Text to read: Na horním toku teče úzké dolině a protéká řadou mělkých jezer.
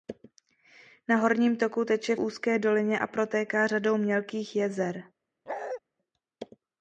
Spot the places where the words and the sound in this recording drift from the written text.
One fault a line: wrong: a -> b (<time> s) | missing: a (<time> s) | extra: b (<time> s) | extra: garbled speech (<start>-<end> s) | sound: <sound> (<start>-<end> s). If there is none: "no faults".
sound: bark (5.5-5.8 s)